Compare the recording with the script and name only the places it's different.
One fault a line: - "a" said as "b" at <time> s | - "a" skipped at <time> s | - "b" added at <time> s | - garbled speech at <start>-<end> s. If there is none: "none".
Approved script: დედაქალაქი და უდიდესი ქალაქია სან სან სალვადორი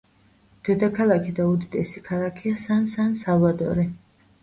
none